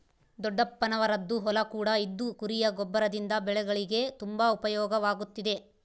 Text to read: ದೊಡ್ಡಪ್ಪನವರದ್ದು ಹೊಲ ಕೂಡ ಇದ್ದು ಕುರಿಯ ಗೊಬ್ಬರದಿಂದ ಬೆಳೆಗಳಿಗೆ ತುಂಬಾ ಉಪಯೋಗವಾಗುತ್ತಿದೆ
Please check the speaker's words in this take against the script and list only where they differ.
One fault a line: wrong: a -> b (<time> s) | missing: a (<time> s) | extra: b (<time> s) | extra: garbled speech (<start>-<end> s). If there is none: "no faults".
no faults